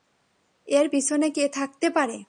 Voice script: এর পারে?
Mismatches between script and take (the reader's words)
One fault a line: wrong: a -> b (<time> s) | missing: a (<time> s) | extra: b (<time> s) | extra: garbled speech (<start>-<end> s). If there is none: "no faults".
extra: পিছনে কে থাকতে (0.9 s)